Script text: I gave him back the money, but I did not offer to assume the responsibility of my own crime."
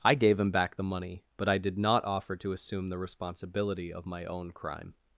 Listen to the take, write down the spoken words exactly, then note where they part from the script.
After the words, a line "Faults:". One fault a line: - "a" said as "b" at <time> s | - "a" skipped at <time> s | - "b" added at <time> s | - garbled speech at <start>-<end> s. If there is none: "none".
I gave him back the money, but I did not offer to assume the responsibility of my own crime."
Faults:
none